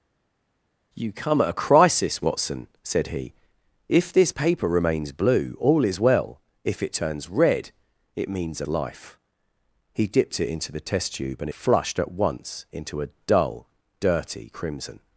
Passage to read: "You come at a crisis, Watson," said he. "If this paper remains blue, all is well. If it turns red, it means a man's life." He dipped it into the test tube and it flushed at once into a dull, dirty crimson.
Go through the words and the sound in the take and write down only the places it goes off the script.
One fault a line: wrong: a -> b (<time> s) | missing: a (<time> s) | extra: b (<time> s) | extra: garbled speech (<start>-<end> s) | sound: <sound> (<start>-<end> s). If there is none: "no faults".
missing: man's (8.7 s)
missing: it (11.5 s)